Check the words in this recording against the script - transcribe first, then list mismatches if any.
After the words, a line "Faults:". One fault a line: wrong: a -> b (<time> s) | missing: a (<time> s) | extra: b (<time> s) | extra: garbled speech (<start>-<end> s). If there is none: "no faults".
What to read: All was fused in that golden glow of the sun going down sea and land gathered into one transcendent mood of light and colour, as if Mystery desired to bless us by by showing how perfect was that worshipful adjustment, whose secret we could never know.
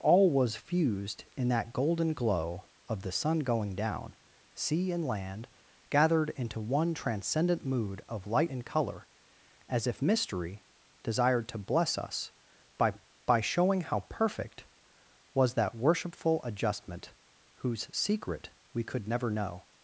All was fused in that golden glow of the sun going down sea and land gathered into one transcendent mood of light and colour, as if Mystery desired to bless us by by showing how perfect was that worshipful adjustment, whose secret we could never know.
Faults:
no faults